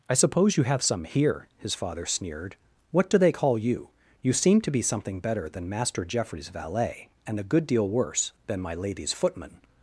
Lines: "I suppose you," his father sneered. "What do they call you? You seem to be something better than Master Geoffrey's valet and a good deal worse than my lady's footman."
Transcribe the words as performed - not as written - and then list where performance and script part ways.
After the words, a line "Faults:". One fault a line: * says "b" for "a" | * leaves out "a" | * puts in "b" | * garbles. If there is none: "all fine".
"I suppose you have some here," his father sneered. "What do they call you? You seem to be something better than Master Geoffrey's valet and a good deal worse than my lady's footman."
Faults:
* puts in "have some here"